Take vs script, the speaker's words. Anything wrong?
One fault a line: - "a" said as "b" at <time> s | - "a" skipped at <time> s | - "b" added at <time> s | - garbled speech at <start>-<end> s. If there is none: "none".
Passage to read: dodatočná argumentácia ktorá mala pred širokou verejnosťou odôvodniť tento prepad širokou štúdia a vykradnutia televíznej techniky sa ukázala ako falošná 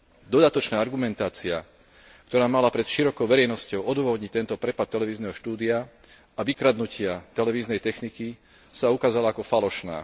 - "širokou" said as "televízneho" at 4.9 s